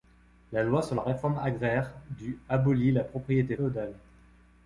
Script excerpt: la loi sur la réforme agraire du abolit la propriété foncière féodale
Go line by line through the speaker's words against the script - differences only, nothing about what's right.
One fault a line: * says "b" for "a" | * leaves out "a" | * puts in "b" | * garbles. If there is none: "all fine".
* leaves out "foncière"